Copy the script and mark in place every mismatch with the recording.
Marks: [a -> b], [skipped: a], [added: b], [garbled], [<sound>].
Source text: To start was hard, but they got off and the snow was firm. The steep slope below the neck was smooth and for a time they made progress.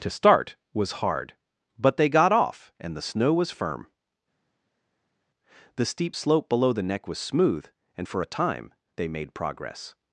To start was hard, but they got off and the snow was firm. The steep slope below the neck was smooth and for a time they made progress.